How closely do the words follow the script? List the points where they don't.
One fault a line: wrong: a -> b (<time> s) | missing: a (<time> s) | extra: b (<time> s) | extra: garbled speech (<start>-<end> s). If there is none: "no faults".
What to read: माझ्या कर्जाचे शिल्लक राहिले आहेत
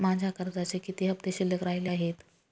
extra: किती हफ्ते (0.8 s)